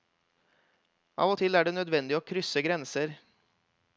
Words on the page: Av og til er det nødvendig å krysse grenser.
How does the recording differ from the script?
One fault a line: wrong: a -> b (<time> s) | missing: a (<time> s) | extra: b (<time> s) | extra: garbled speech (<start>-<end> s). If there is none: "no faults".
no faults